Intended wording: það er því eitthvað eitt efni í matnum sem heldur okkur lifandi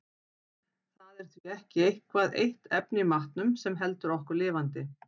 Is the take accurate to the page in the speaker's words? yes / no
no